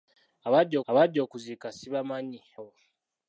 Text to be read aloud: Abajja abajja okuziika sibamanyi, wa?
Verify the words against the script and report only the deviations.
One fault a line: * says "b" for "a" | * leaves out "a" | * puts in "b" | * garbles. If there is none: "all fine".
all fine